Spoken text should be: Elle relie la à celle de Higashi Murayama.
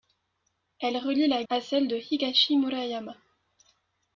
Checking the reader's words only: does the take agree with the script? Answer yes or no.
yes